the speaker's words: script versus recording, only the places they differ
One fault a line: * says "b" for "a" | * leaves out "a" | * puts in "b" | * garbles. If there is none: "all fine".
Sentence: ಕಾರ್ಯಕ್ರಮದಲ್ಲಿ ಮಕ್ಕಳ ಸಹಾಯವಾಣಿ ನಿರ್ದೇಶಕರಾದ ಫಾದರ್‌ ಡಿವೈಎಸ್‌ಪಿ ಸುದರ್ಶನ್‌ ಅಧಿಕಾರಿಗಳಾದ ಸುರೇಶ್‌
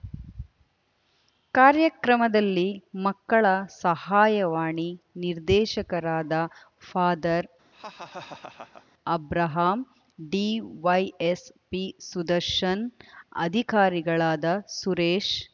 * puts in "ಅಬ್ರಹಾಂ"